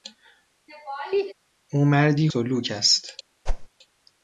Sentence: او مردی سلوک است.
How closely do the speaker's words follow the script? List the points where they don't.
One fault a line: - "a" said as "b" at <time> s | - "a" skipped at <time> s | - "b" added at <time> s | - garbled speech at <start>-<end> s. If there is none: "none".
none